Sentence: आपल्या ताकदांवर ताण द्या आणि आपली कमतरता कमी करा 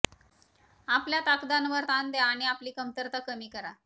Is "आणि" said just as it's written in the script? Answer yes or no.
yes